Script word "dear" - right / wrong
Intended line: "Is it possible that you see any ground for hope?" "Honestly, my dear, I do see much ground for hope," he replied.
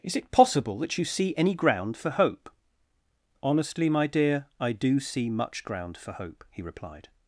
right